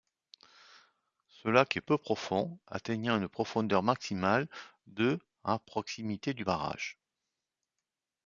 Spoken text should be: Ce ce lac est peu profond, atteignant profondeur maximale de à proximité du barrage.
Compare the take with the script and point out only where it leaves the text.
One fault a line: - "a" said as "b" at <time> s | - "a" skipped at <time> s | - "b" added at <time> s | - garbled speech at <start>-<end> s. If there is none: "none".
- "ce" skipped at 1.5 s
- "une" added at 3.2 s